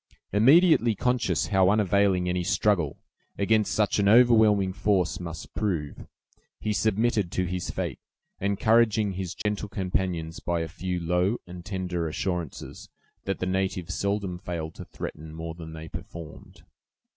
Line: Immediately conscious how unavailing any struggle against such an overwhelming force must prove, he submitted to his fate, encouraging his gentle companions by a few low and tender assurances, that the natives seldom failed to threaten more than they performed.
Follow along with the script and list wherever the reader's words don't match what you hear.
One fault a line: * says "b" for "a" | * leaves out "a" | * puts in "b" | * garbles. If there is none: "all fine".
all fine